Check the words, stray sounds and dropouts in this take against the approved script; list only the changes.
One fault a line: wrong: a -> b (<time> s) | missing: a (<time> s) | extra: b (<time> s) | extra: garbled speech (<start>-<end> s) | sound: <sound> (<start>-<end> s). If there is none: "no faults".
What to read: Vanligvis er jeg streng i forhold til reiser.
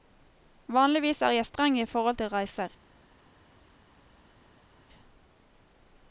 no faults